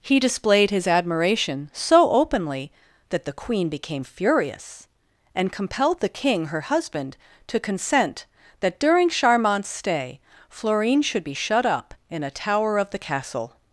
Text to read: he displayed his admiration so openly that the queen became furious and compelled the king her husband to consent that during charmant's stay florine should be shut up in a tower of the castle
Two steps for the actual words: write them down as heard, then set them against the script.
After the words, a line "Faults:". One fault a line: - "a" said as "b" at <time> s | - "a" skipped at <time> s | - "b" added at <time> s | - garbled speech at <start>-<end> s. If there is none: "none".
he displayed his admiration so openly that the queen became furious and compelled the king her husband to consent that during charmant's stay florine should be shut up in a tower of the castle
Faults:
none